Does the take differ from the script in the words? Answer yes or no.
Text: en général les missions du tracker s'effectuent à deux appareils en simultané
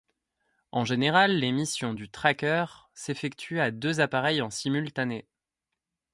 no